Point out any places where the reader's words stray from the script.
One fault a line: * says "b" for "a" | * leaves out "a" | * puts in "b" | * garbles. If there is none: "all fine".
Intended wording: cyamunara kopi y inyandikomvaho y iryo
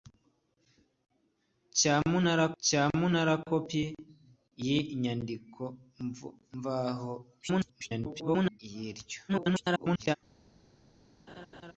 * puts in "cyamunara"
* garbles
* garbles